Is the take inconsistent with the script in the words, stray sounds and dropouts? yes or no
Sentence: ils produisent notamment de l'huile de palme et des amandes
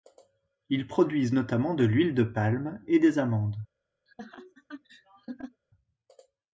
yes